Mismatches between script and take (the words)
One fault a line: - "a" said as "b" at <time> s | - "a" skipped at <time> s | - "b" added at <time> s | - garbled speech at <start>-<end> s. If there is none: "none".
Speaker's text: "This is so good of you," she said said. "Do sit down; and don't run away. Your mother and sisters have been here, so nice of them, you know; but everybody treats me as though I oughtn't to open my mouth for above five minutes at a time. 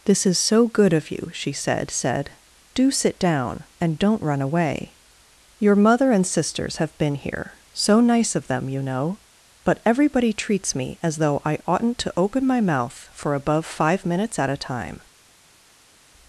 none